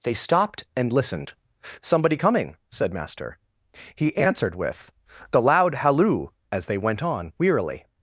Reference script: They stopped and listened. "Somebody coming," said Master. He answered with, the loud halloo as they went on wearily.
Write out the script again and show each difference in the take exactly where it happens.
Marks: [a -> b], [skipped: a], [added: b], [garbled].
They stopped and listened. "Somebody coming," said Master. He answered with, the loud halloo as they went on wearily.